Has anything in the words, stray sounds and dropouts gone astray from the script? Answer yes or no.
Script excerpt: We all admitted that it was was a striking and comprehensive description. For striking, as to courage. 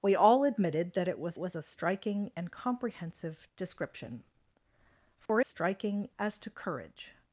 yes